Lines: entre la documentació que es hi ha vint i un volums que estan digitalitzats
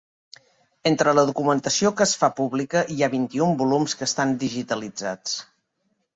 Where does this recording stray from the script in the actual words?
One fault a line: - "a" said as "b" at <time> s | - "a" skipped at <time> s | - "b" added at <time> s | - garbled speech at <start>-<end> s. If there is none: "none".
- "fa pública" added at 2.2 s